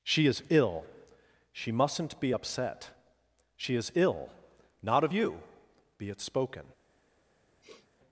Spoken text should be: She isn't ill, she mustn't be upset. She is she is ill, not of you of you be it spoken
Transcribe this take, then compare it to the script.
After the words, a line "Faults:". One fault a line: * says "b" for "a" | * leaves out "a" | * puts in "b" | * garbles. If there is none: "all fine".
She is ill, she mustn't be upset. She is ill, not of you be it spoken
Faults:
* says "is" for "isn't"
* leaves out "she is"
* leaves out "of you"